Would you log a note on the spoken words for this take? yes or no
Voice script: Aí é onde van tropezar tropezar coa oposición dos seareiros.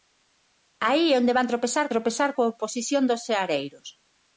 no